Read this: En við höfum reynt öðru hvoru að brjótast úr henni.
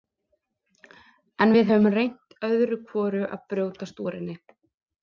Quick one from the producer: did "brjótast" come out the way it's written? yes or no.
yes